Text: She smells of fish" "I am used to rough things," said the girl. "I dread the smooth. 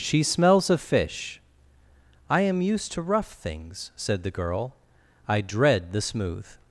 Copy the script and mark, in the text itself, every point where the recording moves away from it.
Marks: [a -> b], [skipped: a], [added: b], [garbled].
She smells of fish" "I am used to rough things," said the girl. "I dread the smooth.